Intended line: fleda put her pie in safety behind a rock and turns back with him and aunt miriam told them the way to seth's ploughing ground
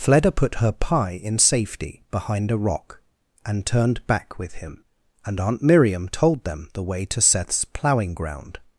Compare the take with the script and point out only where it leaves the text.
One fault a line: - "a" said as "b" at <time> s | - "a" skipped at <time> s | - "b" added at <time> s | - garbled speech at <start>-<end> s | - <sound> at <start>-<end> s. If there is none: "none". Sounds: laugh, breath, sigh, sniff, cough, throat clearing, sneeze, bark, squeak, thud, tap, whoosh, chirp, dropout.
- "turns" said as "turned" at 3.7 s